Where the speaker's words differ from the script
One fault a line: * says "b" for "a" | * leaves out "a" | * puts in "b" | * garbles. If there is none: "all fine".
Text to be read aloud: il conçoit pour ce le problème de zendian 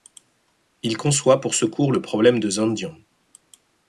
* puts in "cours"